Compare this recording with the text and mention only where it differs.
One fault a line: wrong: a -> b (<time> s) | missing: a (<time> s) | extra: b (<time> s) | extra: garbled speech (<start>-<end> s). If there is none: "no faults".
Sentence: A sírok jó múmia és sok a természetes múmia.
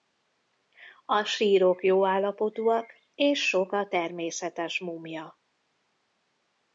wrong: múmia -> állapotúak (2.0 s)